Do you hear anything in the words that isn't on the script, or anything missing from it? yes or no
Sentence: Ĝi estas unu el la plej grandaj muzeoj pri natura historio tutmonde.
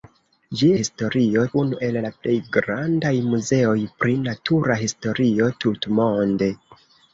yes